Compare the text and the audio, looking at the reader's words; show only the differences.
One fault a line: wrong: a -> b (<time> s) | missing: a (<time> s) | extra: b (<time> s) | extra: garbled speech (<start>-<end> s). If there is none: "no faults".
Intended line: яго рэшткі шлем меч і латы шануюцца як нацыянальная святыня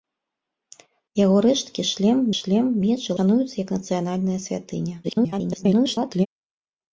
extra: шлем (2.4 s)
missing: латы (3.2 s)
extra: garbled speech (5.0-6.3 s)